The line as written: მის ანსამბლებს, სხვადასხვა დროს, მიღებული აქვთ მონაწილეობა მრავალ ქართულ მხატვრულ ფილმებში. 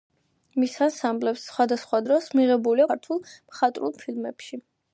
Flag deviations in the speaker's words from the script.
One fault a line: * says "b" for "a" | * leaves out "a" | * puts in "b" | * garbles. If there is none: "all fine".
* leaves out "აქვთ მონაწილეობა მრავალ"